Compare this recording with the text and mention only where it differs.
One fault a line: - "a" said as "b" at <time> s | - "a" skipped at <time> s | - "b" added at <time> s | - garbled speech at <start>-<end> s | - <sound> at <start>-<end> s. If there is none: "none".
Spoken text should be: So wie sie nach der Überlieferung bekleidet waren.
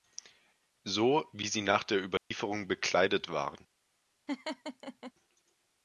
- dropout at 2.2-2.3 s
- laugh at 4.3-5.1 s